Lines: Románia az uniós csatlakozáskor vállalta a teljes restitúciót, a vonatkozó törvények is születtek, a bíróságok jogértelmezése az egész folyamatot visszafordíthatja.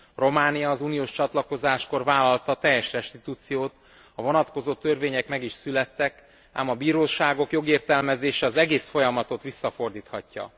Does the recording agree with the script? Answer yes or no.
no